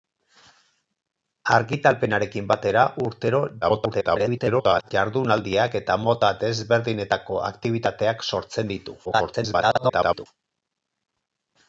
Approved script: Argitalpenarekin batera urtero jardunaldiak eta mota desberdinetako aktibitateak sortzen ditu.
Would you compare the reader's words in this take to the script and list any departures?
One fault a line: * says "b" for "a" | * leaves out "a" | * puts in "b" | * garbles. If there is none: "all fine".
* garbles
* garbles